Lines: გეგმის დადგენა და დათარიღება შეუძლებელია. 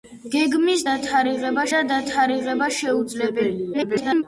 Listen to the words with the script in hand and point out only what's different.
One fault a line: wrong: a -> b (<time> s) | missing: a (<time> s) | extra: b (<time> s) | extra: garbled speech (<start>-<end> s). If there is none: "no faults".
wrong: დადგენა -> დათარიღება (0.9 s)
extra: garbled speech (3.7-4.2 s)